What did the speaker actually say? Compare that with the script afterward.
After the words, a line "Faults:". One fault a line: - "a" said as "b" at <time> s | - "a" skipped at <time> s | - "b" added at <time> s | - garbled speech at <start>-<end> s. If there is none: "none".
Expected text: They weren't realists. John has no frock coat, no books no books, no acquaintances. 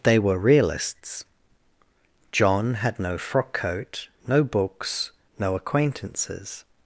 They were realists. John had no frock coat, no books, no acquaintances.
Faults:
- "weren't" said as "were" at 0.2 s
- "has" said as "had" at 2.8 s
- "books no" skipped at 5.5 s